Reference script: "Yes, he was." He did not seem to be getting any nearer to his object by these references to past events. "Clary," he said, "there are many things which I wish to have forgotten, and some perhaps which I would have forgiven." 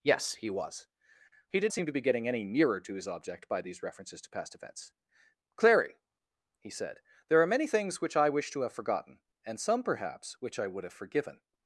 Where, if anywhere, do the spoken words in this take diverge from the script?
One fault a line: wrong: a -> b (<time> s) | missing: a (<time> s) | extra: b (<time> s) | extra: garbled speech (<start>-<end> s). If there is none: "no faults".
missing: not (1.7 s)